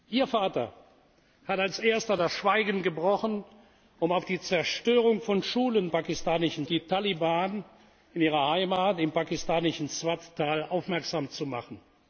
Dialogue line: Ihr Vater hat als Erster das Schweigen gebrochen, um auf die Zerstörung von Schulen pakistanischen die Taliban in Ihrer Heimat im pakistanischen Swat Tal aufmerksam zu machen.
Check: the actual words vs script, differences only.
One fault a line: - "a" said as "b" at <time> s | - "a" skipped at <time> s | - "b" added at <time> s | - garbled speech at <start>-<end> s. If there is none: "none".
none